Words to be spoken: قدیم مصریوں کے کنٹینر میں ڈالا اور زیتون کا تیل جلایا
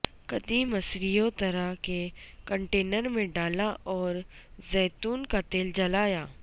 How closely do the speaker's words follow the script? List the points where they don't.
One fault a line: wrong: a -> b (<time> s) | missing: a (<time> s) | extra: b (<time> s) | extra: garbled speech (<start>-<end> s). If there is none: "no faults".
extra: طرح (1.4 s)